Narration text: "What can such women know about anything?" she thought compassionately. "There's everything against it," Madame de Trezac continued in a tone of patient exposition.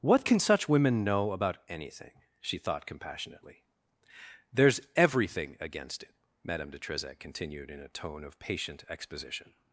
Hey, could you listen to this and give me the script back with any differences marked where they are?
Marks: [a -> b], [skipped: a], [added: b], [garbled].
"What can such women know about anything?" she thought compassionately. "There's everything against it," Madame de Trezac continued in a tone of patient exposition.